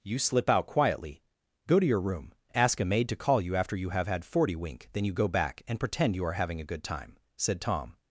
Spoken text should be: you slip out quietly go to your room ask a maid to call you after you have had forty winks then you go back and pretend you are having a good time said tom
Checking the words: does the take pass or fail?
fail